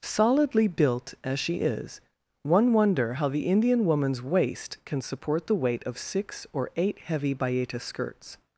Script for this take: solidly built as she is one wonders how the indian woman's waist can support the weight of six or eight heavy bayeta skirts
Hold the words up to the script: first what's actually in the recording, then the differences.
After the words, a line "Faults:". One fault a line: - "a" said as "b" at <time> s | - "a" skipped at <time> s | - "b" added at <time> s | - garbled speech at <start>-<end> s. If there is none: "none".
solidly built as she is one wonder how the indian woman's waist can support the weight of six or eight heavy bayeta skirts
Faults:
- "wonders" said as "wonder" at 2.7 s